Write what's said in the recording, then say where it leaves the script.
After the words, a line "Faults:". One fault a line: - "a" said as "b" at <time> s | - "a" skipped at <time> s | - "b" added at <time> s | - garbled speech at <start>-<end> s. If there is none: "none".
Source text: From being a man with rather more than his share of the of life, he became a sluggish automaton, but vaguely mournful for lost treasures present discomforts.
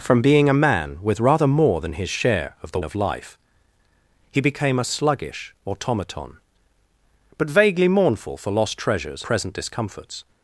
From being a man with rather more than his share of the of life, he became a sluggish automaton, but vaguely mournful for lost treasures present discomforts.
Faults:
none